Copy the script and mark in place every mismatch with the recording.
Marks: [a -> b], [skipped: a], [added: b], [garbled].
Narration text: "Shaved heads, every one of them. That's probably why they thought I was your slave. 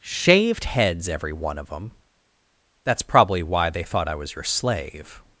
"Shaved heads, every one of them. That's probably why they thought I was your slave.